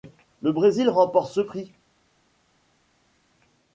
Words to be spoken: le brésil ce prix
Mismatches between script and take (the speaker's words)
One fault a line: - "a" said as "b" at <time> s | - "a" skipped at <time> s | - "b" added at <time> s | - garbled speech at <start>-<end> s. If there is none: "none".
- "remporte" added at 0.9 s